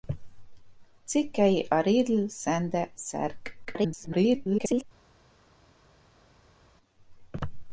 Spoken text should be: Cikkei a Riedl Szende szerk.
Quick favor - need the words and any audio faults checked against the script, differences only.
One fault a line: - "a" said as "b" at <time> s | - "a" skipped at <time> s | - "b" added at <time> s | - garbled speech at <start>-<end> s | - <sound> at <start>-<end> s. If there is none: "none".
- garbled speech at 3.6-4.8 s